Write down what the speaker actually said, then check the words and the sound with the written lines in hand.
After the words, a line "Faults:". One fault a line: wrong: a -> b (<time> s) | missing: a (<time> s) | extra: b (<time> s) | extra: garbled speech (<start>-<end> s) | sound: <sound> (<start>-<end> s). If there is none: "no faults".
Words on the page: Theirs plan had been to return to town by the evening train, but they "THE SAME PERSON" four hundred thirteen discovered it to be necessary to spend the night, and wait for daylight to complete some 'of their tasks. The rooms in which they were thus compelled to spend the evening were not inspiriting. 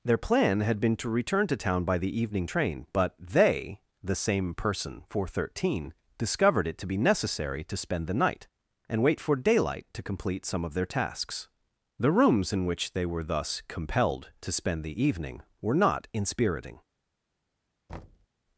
Their plan had been to return to town by the evening train, but they "THE SAME PERSON" four hundred thirteen discovered it to be necessary to spend the night, and wait for daylight to complete some 'of their tasks. The rooms in which they were thus compelled to spend the evening were not inspiriting.
Faults:
wrong: Theirs -> Their (0.0 s)
sound: thud (17.9-18.3 s)